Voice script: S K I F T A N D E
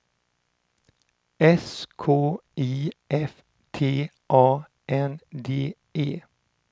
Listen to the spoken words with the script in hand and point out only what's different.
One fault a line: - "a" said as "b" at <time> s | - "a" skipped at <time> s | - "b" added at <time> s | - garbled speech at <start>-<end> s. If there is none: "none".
none